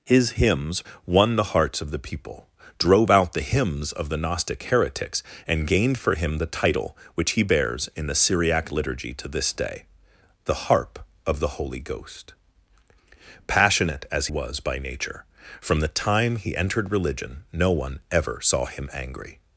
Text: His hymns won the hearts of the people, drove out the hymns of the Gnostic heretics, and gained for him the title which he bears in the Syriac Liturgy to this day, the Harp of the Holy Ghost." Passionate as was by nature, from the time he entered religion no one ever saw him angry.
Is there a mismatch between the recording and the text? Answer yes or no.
no